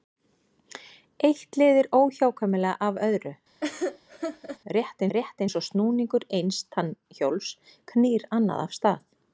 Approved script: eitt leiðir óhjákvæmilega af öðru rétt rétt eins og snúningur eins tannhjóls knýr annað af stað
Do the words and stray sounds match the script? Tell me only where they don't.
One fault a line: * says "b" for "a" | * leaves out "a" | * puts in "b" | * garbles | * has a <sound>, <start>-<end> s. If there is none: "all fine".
* has a laugh, 3.6-4.6 s